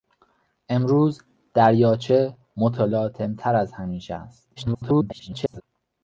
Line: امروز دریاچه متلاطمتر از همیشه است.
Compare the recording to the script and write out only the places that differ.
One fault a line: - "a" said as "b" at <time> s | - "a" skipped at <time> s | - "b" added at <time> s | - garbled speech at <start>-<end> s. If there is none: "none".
- garbled speech at 4.6-5.6 s